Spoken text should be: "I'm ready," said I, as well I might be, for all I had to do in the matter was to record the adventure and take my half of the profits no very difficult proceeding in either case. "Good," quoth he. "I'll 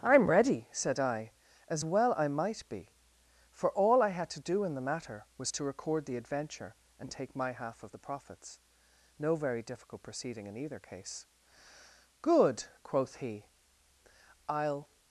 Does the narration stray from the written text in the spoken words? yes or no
no